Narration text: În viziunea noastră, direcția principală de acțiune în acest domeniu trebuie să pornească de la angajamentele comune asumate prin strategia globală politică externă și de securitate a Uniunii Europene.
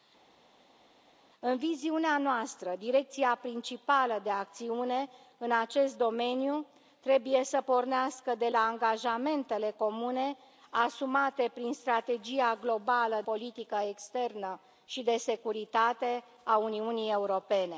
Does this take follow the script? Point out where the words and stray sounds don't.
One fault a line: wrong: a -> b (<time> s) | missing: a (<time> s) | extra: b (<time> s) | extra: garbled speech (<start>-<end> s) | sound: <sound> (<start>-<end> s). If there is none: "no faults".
no faults